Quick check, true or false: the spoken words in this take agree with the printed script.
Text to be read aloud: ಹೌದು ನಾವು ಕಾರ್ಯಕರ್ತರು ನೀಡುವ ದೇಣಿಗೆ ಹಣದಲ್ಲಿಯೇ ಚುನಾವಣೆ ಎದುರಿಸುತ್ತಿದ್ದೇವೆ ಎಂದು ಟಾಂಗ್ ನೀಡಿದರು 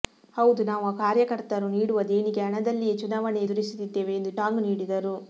true